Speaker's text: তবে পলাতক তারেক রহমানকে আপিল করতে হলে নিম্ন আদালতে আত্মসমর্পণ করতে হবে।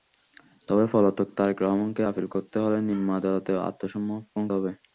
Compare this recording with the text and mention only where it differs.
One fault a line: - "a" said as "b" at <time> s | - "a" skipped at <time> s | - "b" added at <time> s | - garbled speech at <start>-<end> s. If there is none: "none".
- "করতে" skipped at 4.4 s